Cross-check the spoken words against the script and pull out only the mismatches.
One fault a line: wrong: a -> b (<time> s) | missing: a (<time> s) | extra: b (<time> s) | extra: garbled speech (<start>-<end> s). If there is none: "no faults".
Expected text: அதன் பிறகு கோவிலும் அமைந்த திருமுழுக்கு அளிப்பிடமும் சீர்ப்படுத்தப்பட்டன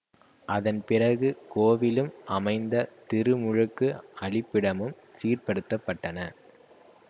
no faults